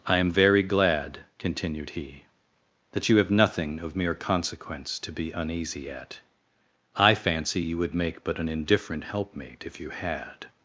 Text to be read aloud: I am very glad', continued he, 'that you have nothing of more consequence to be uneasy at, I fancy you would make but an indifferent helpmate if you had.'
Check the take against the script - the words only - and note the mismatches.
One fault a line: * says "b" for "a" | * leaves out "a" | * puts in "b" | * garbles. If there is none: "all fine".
* says "mere" for "more"